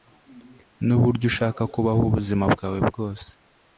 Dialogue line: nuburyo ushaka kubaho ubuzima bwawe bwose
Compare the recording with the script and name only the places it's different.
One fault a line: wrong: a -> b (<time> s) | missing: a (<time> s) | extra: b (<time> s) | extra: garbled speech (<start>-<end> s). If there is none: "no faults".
no faults